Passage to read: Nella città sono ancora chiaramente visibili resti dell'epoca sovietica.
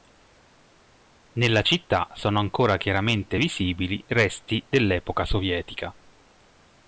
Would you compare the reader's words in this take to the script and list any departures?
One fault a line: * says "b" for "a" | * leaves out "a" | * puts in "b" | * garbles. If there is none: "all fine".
all fine